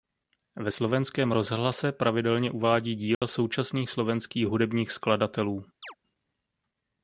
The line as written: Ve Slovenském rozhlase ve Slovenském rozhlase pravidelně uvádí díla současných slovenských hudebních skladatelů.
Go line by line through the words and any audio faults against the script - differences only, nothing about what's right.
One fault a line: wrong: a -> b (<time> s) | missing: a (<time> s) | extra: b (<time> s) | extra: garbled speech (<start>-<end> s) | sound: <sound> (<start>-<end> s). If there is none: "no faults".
missing: ve Slovenském rozhlase (1.9 s)
sound: dropout (3.1-3.2 s)
sound: chirp (5.8-6.0 s)